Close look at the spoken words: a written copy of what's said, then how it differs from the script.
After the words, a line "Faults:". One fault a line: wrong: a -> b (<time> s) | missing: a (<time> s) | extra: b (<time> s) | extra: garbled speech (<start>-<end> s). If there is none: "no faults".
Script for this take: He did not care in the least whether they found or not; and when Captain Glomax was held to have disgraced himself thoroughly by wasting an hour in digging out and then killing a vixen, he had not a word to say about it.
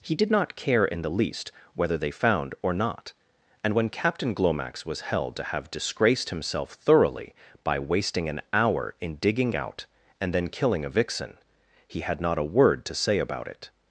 He did not care in the least whether they found or not; and when Captain Glomax was held to have disgraced himself thoroughly by wasting an hour in digging out and then killing a vixen, he had not a word to say about it.
Faults:
no faults